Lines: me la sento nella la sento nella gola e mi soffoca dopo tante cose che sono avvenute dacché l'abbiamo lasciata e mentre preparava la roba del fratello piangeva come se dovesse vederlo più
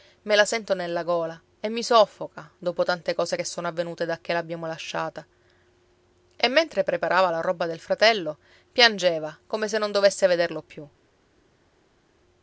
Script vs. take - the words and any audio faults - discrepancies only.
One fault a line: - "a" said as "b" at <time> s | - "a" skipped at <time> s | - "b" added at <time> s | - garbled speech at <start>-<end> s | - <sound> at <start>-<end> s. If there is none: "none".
- "la sento nella" skipped at 1.0 s
- "non" added at 9.8 s